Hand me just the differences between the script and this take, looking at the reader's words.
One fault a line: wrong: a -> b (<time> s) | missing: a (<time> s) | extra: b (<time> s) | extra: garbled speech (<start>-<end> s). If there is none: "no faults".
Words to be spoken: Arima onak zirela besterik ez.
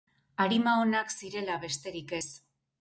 no faults